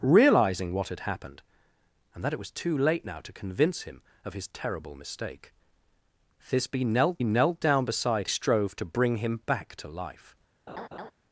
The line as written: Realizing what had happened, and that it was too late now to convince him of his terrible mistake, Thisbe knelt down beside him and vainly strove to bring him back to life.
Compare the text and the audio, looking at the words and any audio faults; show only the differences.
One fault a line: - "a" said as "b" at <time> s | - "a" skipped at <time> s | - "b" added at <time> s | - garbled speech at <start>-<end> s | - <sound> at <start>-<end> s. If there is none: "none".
- "knelt" added at 7.2 s
- "him and vainly" skipped at 8.3 s
- laugh at 10.7-11.1 s